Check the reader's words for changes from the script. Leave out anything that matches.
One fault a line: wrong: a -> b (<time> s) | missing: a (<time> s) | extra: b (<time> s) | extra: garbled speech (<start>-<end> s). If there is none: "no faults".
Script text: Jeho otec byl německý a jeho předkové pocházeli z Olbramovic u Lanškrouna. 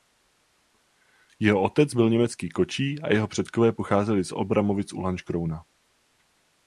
extra: kočí (2.5 s)